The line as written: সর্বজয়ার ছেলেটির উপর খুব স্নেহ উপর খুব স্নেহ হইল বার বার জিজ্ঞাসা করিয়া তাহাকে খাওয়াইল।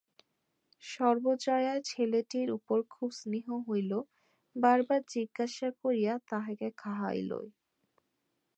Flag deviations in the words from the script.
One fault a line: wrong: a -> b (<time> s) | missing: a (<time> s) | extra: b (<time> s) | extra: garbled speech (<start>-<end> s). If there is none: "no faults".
missing: উপর খুব স্নেহ (3.5 s)